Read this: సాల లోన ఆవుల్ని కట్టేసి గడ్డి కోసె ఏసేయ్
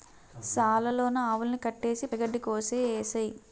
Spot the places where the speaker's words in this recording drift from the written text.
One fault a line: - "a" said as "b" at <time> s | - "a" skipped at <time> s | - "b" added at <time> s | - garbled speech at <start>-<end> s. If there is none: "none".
none